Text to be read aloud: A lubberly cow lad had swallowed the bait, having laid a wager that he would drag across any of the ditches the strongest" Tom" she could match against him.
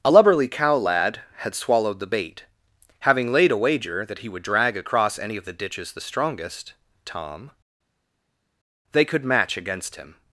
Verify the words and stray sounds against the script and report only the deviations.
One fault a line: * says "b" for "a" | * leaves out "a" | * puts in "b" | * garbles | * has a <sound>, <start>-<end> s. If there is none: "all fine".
* says "they" for "she"